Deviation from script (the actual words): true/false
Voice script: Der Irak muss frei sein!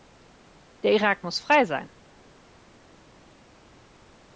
false